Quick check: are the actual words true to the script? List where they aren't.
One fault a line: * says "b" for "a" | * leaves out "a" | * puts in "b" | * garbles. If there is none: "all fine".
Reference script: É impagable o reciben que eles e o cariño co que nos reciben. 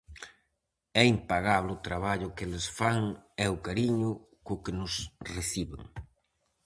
* says "traballo" for "reciben"
* puts in "fan"